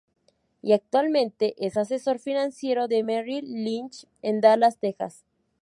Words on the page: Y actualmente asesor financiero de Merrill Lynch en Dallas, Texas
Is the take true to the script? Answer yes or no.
no